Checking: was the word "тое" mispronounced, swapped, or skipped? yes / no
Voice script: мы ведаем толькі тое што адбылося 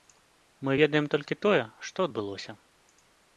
no